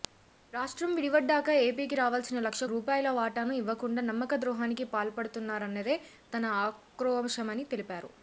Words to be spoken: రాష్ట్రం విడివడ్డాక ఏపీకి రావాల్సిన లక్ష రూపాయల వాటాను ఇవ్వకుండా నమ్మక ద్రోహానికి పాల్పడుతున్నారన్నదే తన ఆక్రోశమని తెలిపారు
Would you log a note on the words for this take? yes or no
no